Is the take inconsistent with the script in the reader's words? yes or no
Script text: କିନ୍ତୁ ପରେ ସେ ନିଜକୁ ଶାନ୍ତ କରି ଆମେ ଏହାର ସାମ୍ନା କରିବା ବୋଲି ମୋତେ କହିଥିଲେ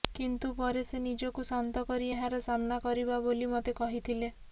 yes